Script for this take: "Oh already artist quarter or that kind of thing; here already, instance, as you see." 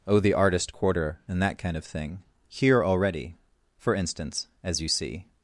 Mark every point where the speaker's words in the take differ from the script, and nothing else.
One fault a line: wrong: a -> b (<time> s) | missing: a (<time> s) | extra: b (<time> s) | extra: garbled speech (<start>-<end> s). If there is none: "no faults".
wrong: already -> the (0.2 s)
wrong: or -> and (1.3 s)
extra: for (3.8 s)